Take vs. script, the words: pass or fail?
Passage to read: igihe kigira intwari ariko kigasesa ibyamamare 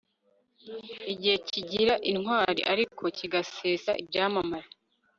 pass